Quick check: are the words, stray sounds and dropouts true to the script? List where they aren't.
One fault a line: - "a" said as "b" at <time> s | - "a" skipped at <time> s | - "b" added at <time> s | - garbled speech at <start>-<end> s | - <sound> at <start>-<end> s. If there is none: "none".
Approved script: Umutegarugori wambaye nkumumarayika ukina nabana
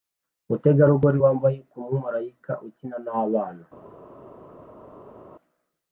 none